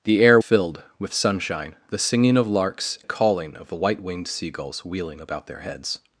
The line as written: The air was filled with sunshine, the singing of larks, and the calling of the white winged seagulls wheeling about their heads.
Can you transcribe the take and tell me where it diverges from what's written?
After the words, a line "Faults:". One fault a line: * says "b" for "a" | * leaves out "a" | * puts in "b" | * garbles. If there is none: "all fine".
The air filled with sunshine, the singing of larks, the calling of the white winged seagulls wheeling about their heads.
Faults:
* leaves out "was"
* leaves out "and"